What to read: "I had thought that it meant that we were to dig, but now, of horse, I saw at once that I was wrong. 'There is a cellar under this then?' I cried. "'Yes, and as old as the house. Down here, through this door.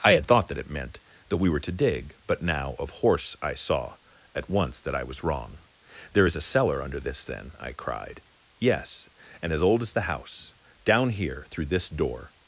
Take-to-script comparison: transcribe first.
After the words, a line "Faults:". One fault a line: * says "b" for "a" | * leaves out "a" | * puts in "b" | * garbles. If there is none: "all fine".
"I had thought that it meant that we were to dig, but now, of horse, I saw at once that I was wrong. 'There is a cellar under this then?' I cried. "'Yes, and as old as the house. Down here, through this door.
Faults:
all fine